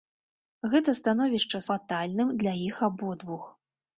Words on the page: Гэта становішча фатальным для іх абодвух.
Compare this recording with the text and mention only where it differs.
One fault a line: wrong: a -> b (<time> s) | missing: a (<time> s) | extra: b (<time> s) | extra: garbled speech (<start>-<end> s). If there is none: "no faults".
no faults